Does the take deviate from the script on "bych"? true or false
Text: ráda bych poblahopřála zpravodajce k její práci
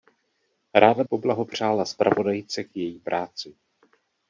true